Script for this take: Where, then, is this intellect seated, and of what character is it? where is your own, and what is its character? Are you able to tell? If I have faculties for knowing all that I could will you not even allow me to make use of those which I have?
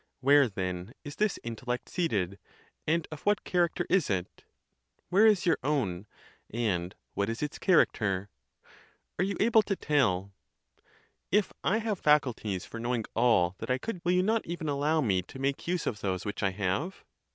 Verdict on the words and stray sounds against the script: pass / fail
pass